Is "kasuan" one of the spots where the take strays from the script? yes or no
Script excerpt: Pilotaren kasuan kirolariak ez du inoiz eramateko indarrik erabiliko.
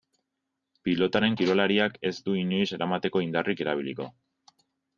yes